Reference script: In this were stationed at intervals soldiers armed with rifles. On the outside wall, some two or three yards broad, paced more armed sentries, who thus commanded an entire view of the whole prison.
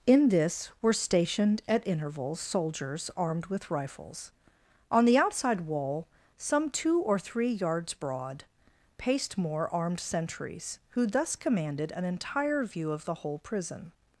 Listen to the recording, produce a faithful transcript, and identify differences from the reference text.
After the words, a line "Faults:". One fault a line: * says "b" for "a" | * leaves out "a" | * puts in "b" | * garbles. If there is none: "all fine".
In this were stationed at intervals soldiers armed with rifles. On the outside wall, some two or three yards broad, paced more armed sentries, who thus commanded an entire view of the whole prison.
Faults:
all fine